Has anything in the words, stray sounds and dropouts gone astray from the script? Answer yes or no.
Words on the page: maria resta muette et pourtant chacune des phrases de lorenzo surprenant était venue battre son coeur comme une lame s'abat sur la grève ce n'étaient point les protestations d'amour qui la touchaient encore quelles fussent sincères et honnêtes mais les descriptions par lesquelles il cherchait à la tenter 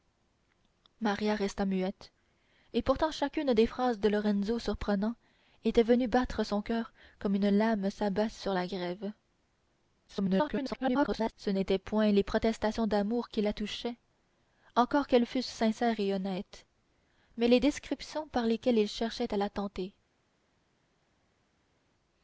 yes